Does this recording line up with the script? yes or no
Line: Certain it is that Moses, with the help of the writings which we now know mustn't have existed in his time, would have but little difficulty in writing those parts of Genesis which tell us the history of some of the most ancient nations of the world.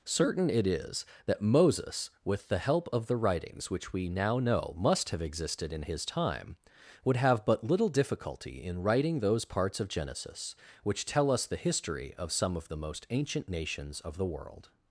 no